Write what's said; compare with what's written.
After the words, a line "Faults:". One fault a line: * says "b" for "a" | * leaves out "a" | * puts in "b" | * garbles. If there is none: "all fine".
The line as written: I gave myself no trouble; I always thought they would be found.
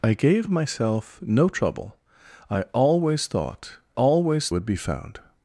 I gave myself no trouble; I always thought always would be found.
Faults:
* says "always" for "they"